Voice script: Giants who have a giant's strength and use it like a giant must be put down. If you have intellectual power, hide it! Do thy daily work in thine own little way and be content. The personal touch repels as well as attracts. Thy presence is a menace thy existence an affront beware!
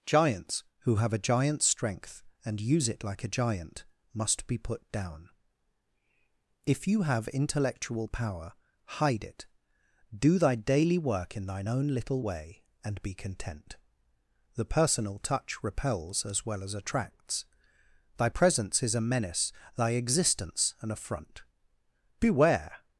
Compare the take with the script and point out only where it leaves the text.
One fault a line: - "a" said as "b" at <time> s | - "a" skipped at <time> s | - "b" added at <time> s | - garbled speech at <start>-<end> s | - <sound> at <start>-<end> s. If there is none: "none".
none